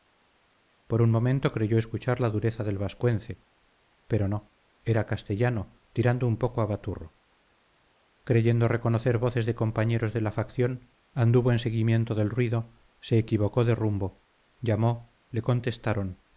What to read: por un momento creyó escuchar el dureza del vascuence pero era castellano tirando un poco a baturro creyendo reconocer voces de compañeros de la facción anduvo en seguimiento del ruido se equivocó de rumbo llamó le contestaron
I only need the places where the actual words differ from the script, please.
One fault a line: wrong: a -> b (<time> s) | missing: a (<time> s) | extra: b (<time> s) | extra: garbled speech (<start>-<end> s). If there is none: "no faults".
wrong: el -> la (2.2 s)
extra: no (4.3 s)